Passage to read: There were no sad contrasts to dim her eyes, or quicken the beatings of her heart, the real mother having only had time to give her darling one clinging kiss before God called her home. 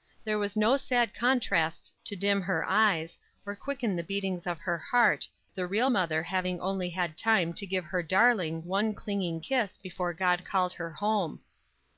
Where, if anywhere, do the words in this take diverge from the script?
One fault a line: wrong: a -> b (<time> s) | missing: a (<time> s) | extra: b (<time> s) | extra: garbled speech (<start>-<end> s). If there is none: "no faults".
no faults